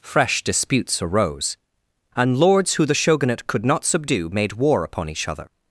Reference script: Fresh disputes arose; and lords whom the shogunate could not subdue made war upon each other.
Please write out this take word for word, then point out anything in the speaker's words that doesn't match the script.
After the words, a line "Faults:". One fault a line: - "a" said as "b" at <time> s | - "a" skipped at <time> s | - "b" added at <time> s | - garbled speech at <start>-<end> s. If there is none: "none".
Fresh disputes arose; and lords who the shogunate could not subdue made war upon each other.
Faults:
- "whom" said as "who" at 2.7 s